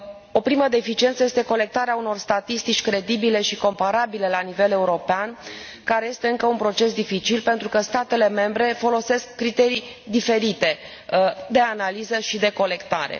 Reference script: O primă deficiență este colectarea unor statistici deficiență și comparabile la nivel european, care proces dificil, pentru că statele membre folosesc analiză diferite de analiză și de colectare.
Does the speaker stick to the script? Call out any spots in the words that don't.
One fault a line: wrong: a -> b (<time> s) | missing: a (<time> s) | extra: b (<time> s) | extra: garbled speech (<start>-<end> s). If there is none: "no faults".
wrong: deficiență -> credibile (2.8 s)
extra: este încă un (6.1 s)
wrong: analiză -> criterii (9.4 s)